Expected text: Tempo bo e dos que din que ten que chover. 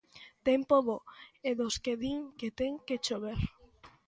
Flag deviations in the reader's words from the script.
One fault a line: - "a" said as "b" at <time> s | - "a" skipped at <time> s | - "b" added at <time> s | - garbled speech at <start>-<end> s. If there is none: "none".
none